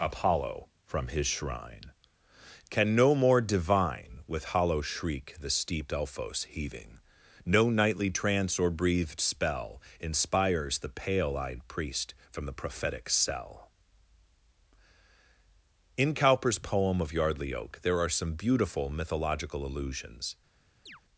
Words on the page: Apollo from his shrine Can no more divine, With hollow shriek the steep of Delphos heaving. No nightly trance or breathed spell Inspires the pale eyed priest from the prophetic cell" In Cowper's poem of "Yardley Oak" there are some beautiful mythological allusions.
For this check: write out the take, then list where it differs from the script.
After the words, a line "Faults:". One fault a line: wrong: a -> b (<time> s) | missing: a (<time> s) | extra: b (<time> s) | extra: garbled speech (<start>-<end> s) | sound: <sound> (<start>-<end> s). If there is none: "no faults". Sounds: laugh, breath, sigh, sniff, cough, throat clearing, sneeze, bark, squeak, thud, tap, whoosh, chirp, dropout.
Apollo from his shrine Can no more divine, With hollow shriek the steep Delphos heaving. No nightly trance or breathed spell Inspires the pale eyed priest from the prophetic cell" In Cowper's poem of "Yardley Oak" there are some beautiful mythological allusions.
Faults:
missing: of (5.9 s)
sound: chirp (20.9-21.0 s)